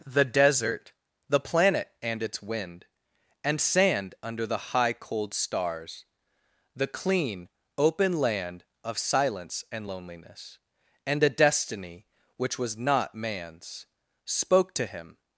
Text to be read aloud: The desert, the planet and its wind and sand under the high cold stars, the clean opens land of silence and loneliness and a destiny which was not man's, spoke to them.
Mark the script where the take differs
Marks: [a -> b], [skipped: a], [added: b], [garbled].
The desert, the planet and its wind and sand under the high cold stars, the clean [opens -> open] land of silence and loneliness and a destiny which was not man's, spoke to [them. -> him]